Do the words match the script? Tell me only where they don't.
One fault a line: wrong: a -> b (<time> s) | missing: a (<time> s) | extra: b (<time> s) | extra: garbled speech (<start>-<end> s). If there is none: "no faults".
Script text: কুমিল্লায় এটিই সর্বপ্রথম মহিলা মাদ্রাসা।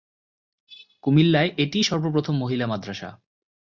no faults